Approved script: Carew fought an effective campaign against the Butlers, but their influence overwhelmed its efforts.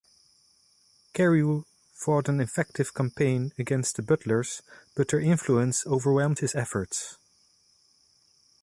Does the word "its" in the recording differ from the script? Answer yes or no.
yes